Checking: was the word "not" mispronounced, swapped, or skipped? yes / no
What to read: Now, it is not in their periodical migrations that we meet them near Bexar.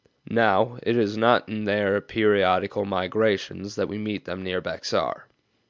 no